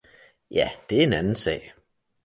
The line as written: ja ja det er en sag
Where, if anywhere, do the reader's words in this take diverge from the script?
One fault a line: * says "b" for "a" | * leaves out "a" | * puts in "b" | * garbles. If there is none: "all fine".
* leaves out "ja"
* puts in "anden"